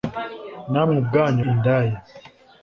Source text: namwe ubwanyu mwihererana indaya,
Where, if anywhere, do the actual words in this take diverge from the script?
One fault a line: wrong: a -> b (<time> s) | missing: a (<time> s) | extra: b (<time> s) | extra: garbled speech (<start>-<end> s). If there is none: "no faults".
missing: mwihererana (1.4 s)